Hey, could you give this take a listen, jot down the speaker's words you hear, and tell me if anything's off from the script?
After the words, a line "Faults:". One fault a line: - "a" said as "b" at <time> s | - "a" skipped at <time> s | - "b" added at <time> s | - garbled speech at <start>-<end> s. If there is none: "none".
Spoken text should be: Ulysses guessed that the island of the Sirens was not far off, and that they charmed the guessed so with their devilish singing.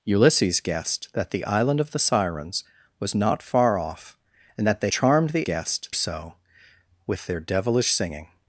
Ulysses guessed that the island of the Sirens was not far off, and that they charmed the guessed so with their devilish singing.
Faults:
none